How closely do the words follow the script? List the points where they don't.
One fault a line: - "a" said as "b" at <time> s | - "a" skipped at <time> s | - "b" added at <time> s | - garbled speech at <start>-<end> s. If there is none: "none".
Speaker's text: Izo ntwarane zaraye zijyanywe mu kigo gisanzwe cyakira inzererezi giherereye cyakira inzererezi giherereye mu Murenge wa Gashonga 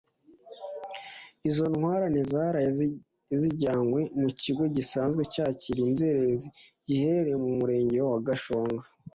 - "cyakira inzererezi giherereye" skipped at 7.4 s